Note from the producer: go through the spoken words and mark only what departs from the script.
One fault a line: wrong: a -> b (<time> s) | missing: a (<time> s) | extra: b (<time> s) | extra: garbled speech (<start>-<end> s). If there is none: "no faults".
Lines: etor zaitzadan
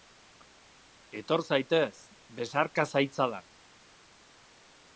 extra: zaitez besarka (1.5 s)